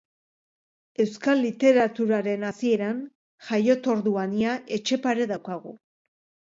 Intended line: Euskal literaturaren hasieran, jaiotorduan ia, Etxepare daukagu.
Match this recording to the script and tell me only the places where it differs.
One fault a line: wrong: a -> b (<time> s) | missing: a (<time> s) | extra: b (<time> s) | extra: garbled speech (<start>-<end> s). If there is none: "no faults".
no faults